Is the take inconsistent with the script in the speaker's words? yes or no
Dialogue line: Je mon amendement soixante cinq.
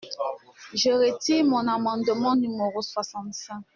yes